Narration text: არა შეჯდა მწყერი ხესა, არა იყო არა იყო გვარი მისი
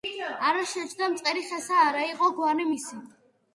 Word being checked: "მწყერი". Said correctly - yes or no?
yes